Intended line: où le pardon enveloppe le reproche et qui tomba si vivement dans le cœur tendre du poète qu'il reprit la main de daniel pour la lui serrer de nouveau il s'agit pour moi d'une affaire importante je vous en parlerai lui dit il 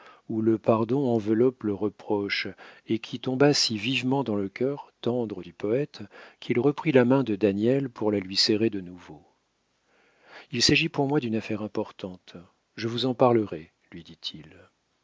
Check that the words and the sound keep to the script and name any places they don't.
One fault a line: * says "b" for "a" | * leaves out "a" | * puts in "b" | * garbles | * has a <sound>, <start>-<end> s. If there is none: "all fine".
all fine